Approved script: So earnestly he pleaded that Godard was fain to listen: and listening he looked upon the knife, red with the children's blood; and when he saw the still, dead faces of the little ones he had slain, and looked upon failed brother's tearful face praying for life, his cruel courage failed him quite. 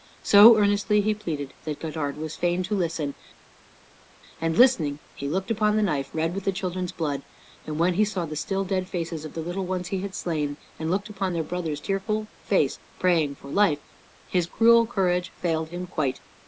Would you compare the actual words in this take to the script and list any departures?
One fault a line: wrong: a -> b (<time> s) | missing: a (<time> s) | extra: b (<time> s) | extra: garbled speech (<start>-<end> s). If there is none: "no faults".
wrong: failed -> their (11.3 s)